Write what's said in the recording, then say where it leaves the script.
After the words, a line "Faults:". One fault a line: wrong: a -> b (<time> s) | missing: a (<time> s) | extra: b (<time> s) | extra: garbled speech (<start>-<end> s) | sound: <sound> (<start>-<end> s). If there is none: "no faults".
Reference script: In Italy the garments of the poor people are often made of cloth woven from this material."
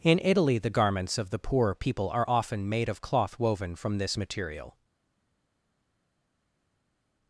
In Italy the garments of the poor people are often made of cloth woven from this material."
Faults:
no faults